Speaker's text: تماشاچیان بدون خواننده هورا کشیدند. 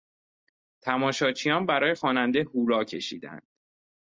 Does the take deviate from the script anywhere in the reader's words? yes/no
yes